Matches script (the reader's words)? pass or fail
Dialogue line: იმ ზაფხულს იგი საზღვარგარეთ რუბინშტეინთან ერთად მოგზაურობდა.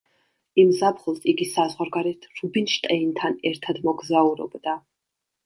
pass